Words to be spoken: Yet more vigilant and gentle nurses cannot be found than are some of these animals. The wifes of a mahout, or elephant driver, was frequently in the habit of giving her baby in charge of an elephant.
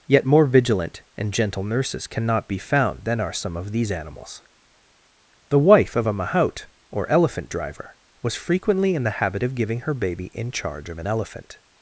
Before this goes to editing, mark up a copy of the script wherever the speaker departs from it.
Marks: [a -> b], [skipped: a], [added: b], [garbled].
Yet more vigilant and gentle nurses cannot be found than are some of these animals. The [wifes -> wife] of a mahout, or elephant driver, was frequently in the habit of giving her baby in charge of an elephant.